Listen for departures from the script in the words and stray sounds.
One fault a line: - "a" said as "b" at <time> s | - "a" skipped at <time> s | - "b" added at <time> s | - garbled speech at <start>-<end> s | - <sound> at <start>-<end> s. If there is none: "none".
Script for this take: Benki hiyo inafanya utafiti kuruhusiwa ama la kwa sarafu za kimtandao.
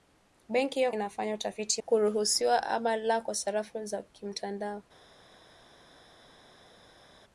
none